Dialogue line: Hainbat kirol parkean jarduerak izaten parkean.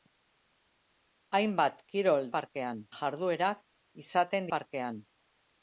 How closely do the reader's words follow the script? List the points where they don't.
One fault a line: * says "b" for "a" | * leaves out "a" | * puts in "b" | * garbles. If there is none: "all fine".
all fine